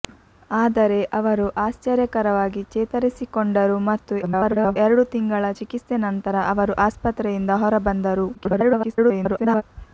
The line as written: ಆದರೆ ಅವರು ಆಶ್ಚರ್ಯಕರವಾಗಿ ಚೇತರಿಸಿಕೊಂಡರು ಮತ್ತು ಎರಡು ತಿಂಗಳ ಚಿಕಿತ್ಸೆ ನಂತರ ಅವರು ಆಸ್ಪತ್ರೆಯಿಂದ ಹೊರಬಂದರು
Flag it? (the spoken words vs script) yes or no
yes